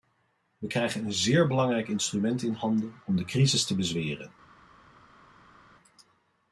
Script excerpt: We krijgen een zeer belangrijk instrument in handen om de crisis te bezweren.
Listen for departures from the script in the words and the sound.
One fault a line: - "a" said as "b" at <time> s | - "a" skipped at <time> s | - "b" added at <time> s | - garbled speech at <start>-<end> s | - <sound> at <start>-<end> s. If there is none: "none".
none